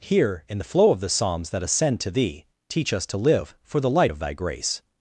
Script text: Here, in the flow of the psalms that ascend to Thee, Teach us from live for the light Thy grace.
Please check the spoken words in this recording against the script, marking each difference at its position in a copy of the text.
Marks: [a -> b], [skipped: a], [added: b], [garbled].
Here, in the flow of the psalms that ascend to Thee, Teach us [from -> to] live for the light [added: of] Thy grace.